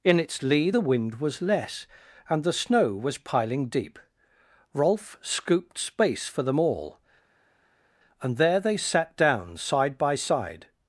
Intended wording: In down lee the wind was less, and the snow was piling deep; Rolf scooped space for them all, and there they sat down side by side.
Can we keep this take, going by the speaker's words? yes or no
no